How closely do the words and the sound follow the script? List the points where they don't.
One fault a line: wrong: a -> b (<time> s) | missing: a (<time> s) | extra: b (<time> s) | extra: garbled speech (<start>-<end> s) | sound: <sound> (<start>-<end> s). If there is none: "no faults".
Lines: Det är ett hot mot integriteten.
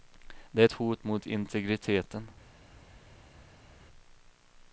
no faults